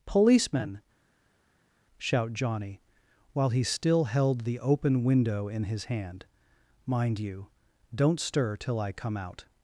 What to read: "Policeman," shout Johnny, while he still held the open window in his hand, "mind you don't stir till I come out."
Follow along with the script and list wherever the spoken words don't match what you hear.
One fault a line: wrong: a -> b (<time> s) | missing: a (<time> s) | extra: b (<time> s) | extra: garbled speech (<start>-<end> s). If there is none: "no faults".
no faults